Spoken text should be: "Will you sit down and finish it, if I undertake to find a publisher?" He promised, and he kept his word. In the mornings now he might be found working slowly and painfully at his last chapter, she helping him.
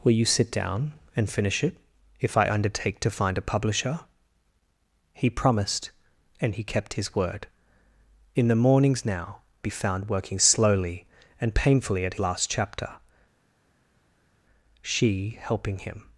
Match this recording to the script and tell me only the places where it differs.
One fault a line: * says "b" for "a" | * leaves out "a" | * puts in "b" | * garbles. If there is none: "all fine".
* leaves out "he might"
* leaves out "his"